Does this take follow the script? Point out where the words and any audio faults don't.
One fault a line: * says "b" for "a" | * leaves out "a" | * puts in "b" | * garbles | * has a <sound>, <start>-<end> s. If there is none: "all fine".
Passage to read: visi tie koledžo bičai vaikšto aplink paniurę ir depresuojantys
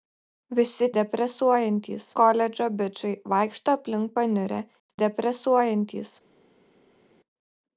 * says "depresuojantys" for "tie"
* leaves out "ir"